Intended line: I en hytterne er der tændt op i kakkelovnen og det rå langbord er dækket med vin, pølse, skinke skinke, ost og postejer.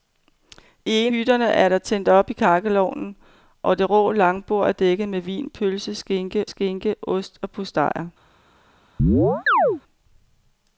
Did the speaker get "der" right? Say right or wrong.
right